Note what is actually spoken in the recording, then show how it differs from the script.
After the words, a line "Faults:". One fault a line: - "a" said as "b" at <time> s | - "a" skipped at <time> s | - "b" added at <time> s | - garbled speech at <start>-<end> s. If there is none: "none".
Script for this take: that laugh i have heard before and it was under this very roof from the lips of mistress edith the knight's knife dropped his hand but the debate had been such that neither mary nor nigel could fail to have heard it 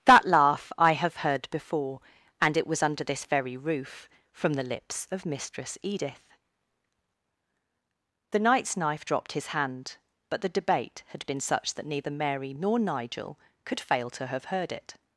that laugh i have heard before and it was under this very roof from the lips of mistress edith the knight's knife dropped his hand but the debate had been such that neither mary nor nigel could fail to have heard it
Faults:
none